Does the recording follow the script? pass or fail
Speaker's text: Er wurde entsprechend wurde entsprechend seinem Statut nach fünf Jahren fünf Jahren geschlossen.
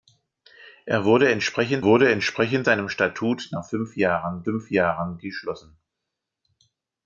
pass